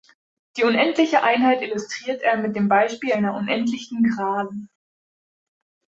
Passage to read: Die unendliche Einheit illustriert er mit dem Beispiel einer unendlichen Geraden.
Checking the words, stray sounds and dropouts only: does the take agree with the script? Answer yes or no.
yes